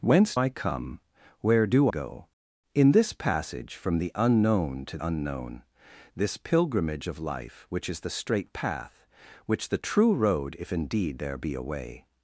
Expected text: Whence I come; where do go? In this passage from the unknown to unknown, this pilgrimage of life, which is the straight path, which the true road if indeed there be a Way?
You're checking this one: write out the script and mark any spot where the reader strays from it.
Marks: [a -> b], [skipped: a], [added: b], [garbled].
Whence I come; where do go? In this passage from the unknown to unknown, this pilgrimage of life, which is the straight path, which the true road if indeed there be a Way?